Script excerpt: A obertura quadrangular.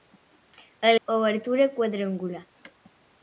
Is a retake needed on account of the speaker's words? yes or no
no